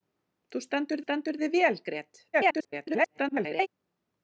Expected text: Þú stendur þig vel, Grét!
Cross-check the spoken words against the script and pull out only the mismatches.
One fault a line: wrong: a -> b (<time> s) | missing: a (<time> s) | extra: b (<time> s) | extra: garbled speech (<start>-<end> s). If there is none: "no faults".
extra: stendur (1.0 s)
extra: garbled speech (2.3-3.7 s)